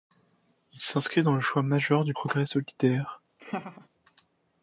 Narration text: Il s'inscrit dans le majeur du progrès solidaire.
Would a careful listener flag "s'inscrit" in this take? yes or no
no